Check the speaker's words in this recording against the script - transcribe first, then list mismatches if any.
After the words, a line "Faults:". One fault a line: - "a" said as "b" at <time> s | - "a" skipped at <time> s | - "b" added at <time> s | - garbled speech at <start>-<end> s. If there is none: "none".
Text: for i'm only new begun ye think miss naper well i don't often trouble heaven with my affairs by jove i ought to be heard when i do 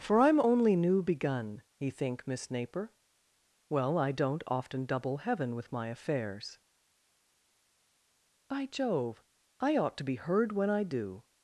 for i'm only new begun ye think miss naper well i don't often double heaven with my affairs by jove i ought to be heard when i do
Faults:
- "trouble" said as "double" at 4.9 s